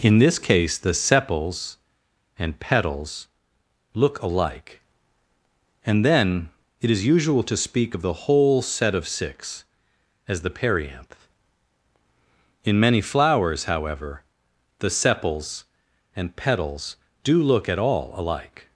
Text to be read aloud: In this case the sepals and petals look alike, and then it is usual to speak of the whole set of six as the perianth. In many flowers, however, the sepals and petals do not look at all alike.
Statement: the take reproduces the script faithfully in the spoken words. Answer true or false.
false